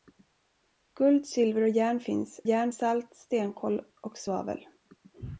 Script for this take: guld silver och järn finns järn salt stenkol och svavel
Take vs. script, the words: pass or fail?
pass